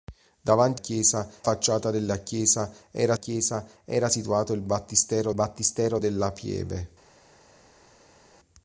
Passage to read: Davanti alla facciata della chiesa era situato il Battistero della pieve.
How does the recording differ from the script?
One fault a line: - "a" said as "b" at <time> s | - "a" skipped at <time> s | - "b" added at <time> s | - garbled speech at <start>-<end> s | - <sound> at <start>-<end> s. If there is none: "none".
- "alla" said as "chiesa" at 0.7 s
- "chiesa era" added at 3.1 s
- "Battistero" added at 5.3 s